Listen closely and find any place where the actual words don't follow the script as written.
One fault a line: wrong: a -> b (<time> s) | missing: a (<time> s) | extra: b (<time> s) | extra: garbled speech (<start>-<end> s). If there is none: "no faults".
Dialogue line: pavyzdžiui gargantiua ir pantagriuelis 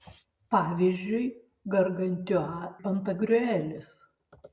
missing: ir (2.7 s)